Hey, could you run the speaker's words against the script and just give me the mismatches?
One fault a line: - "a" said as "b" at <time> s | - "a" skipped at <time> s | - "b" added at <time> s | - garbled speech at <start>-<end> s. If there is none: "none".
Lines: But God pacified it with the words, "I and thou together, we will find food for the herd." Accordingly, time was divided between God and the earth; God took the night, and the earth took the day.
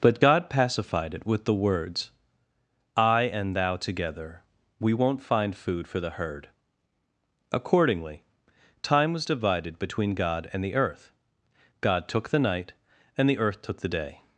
- "will" said as "won't" at 4.9 s